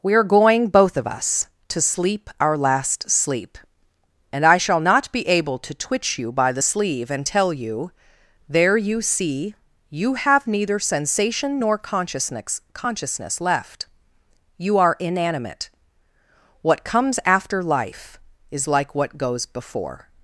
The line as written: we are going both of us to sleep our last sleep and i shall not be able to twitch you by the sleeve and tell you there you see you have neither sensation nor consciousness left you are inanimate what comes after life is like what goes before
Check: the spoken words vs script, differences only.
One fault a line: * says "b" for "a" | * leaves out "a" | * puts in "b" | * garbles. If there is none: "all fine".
* puts in "consciousness"